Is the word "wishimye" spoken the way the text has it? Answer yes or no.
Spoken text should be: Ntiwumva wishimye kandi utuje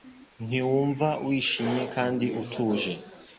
yes